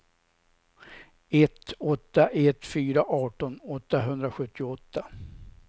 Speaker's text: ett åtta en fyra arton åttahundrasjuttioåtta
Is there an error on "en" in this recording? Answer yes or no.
yes